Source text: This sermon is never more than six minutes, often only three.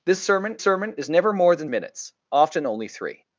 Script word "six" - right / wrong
wrong